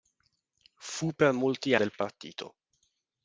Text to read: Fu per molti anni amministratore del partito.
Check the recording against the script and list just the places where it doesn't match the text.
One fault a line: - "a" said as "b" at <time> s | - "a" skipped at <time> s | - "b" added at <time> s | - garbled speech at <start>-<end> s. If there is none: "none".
- "anni amministratore" skipped at 1.8 s